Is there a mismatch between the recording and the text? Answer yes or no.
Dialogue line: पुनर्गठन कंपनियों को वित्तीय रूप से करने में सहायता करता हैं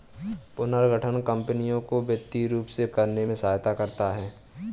no